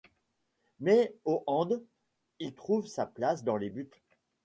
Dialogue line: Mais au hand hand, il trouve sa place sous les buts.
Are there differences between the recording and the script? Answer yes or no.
yes